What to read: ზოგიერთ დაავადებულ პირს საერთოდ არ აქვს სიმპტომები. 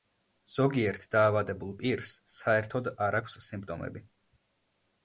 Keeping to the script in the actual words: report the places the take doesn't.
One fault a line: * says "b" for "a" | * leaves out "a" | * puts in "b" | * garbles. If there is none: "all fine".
all fine